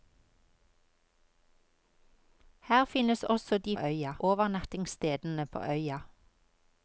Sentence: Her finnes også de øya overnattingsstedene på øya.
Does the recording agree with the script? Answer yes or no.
yes